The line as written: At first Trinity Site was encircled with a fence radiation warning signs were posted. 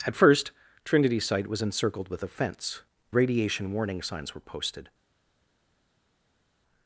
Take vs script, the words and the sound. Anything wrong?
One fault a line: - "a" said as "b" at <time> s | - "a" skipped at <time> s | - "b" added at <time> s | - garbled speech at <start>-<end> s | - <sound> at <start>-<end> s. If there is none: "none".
none